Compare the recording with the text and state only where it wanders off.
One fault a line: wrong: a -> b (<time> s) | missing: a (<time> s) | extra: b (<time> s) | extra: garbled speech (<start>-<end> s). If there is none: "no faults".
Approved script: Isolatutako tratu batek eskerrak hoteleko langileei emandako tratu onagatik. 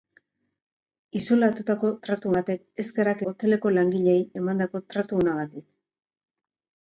no faults